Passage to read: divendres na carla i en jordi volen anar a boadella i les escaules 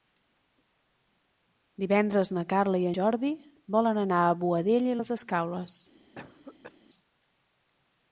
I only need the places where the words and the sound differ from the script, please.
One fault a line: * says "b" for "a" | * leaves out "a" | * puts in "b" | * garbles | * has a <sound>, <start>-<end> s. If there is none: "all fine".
* leaves out "en"
* has a cough, 6.2-6.8 s